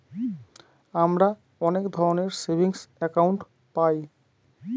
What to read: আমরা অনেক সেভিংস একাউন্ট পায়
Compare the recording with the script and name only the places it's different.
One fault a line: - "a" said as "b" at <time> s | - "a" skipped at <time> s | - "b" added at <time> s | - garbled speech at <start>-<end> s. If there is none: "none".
- "ধরনের" added at 1.9 s